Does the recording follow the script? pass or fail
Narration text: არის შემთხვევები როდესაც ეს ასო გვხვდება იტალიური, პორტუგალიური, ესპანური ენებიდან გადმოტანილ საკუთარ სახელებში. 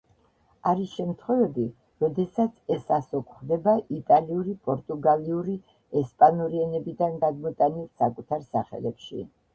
pass